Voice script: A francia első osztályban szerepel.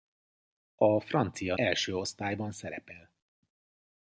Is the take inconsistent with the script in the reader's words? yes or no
no